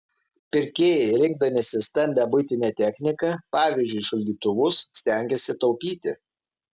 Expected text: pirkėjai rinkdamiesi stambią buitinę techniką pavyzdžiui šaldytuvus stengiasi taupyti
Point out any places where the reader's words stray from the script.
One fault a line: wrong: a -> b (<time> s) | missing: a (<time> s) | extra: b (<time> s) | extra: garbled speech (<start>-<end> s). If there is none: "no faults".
no faults